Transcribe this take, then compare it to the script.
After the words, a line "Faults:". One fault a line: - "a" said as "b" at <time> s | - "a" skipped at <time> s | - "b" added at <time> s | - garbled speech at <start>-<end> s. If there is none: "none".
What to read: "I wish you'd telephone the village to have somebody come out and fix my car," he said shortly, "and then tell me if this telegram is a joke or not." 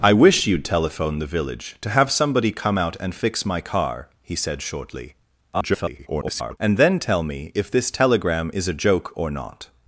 "I wish you'd telephone the village to have somebody come out and fix my car," he said shortly, [garbled] "and then tell me if this telegram is a joke or not."
Faults:
- garbled speech at 5.5-6.6 s